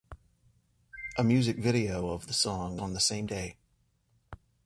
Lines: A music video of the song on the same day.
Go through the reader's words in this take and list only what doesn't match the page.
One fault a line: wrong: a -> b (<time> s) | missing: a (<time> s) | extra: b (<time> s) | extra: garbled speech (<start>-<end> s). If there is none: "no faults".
no faults